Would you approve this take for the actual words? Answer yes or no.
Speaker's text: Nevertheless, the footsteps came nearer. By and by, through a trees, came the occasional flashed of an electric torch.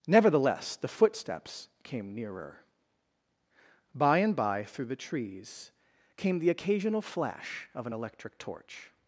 no